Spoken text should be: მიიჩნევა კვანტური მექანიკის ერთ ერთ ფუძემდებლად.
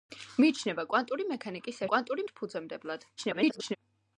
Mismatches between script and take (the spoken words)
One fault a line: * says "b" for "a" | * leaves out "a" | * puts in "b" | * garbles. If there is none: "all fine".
* says "კვანტური" for "ერთ"
* garbles